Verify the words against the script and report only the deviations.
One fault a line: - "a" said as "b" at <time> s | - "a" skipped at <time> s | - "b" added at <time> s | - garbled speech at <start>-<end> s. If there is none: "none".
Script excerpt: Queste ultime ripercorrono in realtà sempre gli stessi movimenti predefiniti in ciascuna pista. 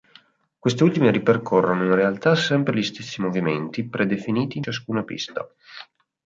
none